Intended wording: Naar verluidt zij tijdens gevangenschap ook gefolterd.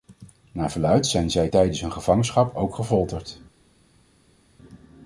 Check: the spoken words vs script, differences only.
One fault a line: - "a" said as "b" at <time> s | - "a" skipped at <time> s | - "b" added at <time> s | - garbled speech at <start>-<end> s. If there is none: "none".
- "zijn" added at 1.1 s
- "hun" added at 1.8 s